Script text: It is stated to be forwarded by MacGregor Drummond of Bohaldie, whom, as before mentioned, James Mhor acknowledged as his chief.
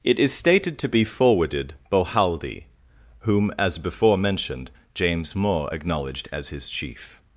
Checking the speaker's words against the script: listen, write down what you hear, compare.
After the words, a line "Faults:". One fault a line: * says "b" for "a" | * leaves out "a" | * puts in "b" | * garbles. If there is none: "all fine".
It is stated to be forwarded Bohaldie, whom, as before mentioned, James Mhor acknowledged as his chief.
Faults:
* leaves out "by MacGregor Drummond of"